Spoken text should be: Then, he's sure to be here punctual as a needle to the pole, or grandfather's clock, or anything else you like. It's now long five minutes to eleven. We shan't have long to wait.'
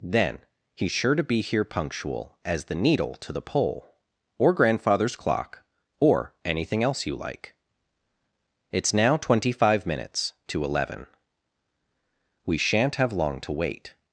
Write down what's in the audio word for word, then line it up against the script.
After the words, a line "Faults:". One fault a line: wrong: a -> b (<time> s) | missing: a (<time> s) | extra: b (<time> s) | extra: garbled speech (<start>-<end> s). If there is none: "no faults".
Then, he's sure to be here punctual as the needle to the pole, or grandfather's clock, or anything else you like. It's now twenty five minutes to eleven. We shan't have long to wait.'
Faults:
wrong: a -> the (2.6 s)
wrong: long -> twenty (9.2 s)